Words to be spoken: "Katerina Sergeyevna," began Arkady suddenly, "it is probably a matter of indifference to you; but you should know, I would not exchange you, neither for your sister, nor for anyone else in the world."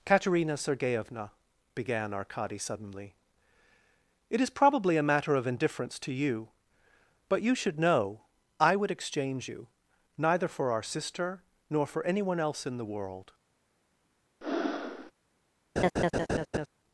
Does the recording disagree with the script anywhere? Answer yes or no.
yes